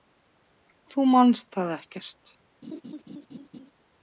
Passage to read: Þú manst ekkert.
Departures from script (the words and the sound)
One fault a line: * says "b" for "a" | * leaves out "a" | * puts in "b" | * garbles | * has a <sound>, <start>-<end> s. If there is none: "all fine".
* puts in "það"
* has a laugh, 2.6-3.7 s